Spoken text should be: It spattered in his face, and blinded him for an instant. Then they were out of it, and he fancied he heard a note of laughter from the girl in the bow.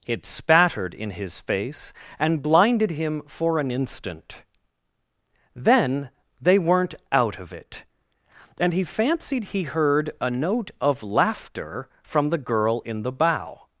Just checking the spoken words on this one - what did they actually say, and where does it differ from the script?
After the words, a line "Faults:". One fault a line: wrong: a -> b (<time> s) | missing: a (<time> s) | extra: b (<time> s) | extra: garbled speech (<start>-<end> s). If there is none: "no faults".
It spattered in his face, and blinded him for an instant. Then they weren't out of it, and he fancied he heard a note of laughter from the girl in the bow.
Faults:
wrong: were -> weren't (6.6 s)